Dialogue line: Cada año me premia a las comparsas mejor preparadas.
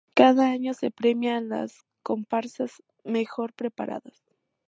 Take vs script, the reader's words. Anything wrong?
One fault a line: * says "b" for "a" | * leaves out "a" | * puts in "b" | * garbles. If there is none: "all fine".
* says "se" for "me"